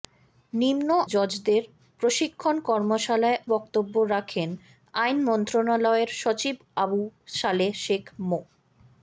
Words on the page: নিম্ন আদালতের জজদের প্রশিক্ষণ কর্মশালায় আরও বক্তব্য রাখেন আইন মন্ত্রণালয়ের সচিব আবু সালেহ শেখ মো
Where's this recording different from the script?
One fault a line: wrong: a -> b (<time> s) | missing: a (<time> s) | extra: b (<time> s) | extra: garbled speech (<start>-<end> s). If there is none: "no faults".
missing: আদালতের (0.9 s)
missing: আরও (3.4 s)